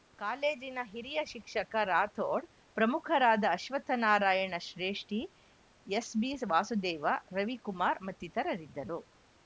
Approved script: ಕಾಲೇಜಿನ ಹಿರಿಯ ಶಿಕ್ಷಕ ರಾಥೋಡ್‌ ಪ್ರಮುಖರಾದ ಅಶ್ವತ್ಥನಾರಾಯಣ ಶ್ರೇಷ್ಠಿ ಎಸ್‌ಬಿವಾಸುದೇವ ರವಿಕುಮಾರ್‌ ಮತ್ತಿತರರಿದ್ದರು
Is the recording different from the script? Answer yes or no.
no